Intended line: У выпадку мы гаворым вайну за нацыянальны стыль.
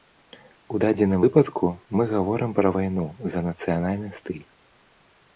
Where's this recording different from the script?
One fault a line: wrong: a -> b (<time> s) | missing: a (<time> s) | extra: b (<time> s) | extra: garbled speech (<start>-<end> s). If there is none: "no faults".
extra: дадзеным (0.8 s)
extra: пра (2.6 s)